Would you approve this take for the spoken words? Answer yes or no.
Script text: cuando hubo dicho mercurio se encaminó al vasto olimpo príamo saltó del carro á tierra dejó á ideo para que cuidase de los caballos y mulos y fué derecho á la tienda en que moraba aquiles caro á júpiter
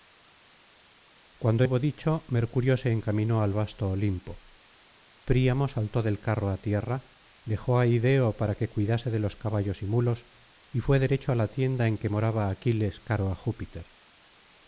yes